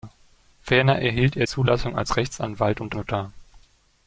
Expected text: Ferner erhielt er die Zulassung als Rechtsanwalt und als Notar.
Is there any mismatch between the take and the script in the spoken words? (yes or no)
yes